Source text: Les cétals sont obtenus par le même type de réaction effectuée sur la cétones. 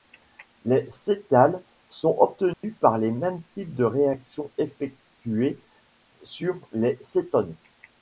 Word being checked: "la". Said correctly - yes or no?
no